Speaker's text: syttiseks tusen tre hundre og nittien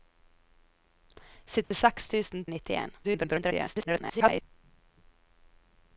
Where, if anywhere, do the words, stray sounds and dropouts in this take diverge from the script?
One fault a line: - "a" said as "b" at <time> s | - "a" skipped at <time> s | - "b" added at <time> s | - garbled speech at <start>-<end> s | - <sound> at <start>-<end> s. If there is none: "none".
- dropout at 1.6-1.7 s
- "tre hundre" skipped at 2.5 s
- garbled speech at 3.0-4.4 s